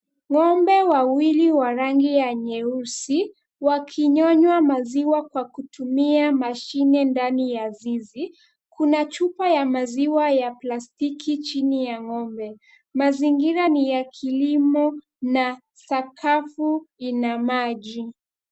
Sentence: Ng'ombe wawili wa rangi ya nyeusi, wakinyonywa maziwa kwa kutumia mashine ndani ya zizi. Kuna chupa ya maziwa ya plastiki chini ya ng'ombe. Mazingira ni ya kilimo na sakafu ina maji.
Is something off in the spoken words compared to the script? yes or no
no